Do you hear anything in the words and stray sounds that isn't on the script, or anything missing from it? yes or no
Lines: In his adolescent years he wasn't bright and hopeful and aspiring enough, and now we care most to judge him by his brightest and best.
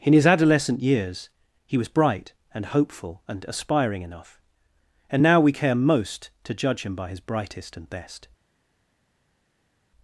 yes